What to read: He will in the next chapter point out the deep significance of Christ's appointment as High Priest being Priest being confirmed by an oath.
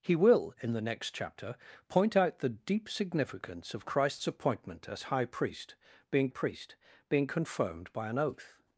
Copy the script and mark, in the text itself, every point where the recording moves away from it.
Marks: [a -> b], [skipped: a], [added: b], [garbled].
He will in the next chapter point out the deep significance of Christ's appointment as High Priest being Priest being confirmed by an oath.